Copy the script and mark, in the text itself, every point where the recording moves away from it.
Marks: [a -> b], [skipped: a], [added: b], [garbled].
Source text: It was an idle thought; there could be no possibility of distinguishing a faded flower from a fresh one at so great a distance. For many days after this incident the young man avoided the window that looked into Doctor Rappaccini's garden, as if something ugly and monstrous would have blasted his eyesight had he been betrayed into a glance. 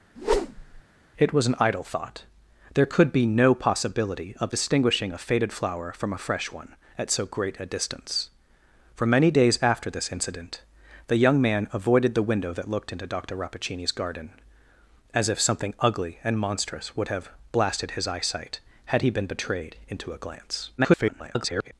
It was an idle thought; there could be no possibility of distinguishing a faded flower from a fresh one at so great a distance. For many days after this incident the young man avoided the window that looked into Doctor Rappaccini's garden, as if something ugly and monstrous would have blasted his eyesight had he been betrayed into a glance. [garbled]